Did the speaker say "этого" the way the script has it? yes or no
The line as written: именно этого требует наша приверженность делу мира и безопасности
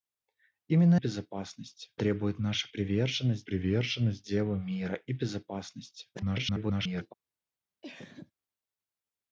no